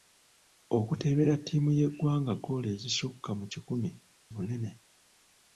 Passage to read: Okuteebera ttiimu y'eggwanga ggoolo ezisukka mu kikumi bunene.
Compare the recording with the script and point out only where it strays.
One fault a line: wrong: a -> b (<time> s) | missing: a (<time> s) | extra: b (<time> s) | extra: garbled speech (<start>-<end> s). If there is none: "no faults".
no faults